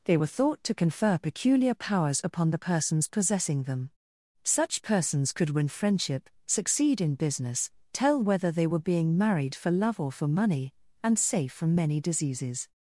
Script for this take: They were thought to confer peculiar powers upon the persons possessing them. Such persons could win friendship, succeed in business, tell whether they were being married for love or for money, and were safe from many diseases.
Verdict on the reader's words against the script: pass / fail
fail